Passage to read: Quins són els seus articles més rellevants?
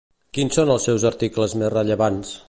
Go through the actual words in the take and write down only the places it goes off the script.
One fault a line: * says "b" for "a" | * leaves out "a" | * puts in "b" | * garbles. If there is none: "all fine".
all fine